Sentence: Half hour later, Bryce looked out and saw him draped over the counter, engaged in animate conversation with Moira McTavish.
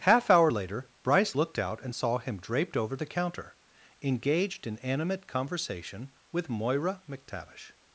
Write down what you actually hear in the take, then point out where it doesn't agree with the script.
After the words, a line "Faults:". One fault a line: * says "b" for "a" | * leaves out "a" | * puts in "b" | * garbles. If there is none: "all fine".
Half hour later, Bryce looked out and saw him draped over the counter, engaged in animate conversation with Moira McTavish.
Faults:
all fine